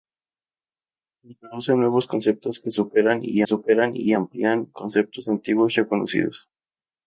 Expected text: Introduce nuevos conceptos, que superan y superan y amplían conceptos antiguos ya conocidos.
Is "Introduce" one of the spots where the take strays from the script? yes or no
no